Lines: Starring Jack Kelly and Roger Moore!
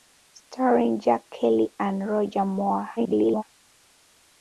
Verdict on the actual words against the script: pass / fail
fail